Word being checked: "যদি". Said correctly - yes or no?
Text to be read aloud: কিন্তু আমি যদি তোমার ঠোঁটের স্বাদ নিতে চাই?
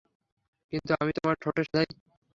no